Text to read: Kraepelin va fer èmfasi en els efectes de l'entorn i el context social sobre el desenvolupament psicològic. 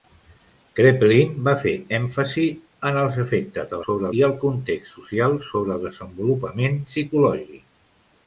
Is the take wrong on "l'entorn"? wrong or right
wrong